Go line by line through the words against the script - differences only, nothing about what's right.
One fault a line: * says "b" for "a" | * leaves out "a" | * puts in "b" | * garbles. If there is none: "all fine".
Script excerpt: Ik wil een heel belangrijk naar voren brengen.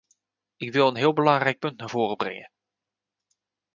* puts in "punt"